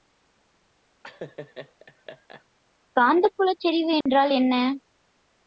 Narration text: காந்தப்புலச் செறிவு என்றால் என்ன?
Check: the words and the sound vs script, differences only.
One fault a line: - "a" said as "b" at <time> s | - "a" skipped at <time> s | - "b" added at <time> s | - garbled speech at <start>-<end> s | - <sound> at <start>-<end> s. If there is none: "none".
- laugh at 1.0-2.4 s
- dropout at 4.0-4.1 s